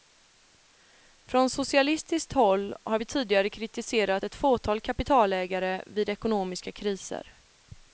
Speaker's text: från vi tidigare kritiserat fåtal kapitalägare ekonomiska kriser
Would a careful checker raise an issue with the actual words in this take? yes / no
yes